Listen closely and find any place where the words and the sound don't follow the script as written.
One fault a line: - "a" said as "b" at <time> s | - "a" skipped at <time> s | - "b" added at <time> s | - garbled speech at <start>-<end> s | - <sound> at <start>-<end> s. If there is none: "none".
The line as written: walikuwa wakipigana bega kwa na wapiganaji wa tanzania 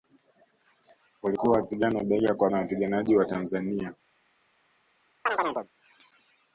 - chirp at 5.3-5.7 s